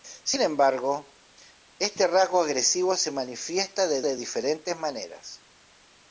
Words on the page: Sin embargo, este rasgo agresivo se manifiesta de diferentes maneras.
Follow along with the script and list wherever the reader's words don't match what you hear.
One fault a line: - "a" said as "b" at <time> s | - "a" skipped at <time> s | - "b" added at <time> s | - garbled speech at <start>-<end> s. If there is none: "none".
- "de" added at 4.0 s